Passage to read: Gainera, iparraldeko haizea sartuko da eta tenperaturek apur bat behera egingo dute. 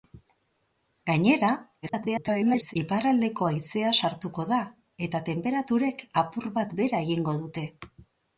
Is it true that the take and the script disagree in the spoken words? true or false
true